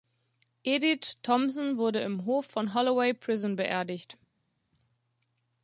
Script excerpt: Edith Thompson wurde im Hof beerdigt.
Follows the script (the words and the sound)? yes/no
no